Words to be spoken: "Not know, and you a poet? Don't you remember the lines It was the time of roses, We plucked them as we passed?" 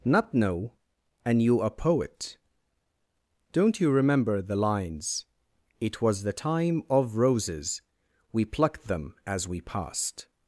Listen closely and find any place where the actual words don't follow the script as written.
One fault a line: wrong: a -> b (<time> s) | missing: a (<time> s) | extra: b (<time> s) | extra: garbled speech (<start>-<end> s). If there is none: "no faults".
no faults